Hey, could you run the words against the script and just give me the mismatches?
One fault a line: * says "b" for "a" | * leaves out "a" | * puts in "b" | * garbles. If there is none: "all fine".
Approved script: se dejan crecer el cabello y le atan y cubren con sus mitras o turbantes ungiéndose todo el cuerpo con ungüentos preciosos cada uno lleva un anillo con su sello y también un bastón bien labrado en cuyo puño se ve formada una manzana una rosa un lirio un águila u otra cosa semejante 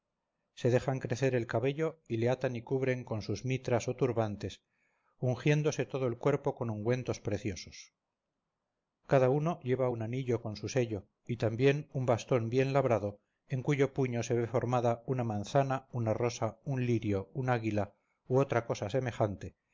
all fine